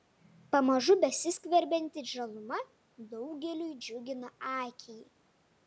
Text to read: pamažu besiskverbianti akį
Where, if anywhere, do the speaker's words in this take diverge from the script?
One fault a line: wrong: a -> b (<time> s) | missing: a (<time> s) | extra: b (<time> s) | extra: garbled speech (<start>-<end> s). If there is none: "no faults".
extra: žaluma daugeliui džiugina (2.1 s)